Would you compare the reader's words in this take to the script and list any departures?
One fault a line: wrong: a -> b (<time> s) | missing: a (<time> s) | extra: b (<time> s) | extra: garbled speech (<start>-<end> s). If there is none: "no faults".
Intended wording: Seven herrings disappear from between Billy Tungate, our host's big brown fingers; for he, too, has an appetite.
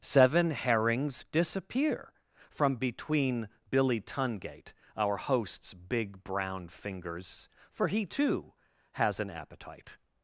no faults